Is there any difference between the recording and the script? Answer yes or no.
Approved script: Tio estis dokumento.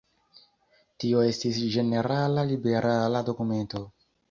yes